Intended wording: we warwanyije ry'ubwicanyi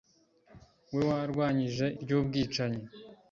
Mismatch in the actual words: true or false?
false